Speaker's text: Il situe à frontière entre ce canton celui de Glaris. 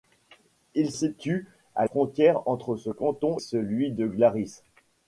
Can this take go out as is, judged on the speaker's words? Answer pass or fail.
pass